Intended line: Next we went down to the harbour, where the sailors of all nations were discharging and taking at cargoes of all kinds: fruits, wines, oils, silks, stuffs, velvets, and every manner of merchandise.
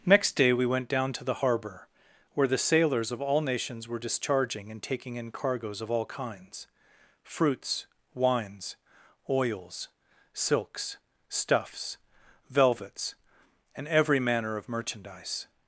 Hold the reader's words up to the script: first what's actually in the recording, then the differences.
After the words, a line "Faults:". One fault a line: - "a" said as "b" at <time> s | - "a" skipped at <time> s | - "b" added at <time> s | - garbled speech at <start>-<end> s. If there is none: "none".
Next day we went down to the harbour, where the sailors of all nations were discharging and taking in cargoes of all kinds: fruits, wines, oils, silks, stuffs, velvets, and every manner of merchandise.
Faults:
- "day" added at 0.3 s
- "at" said as "in" at 5.2 s